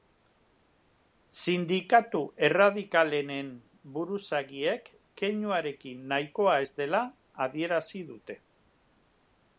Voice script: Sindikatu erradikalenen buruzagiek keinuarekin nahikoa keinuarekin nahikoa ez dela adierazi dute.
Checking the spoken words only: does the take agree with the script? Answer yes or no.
no